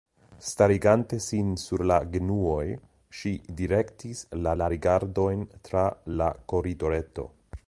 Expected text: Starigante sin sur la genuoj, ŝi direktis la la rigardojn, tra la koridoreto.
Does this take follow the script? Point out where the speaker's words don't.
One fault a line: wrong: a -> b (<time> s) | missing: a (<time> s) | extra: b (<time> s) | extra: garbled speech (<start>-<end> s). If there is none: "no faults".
no faults